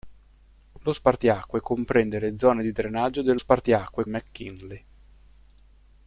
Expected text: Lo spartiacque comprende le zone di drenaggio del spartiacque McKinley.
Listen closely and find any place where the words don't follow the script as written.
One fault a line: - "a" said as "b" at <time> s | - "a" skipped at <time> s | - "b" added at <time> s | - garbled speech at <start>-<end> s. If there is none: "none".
none